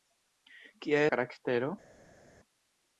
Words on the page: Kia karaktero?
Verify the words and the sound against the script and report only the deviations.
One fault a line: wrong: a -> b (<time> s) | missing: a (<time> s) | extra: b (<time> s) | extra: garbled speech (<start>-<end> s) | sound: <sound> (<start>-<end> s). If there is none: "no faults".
no faults